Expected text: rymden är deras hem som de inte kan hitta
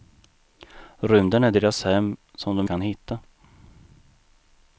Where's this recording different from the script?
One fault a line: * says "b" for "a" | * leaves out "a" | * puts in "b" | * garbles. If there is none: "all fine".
* leaves out "inte"